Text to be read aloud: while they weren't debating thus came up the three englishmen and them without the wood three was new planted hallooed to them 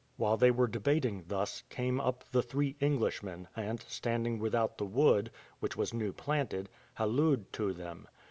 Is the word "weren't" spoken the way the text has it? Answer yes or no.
no